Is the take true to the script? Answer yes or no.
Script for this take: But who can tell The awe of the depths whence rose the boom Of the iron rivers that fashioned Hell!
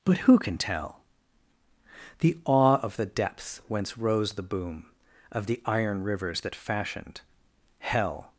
yes